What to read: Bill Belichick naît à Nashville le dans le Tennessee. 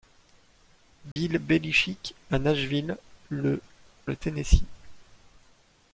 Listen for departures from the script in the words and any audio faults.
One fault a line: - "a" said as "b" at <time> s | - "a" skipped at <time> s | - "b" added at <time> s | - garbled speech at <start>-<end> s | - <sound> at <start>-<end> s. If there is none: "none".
- dropout at 1.1-1.2 s
- "naît" skipped at 2.1 s
- "dans" skipped at 3.6 s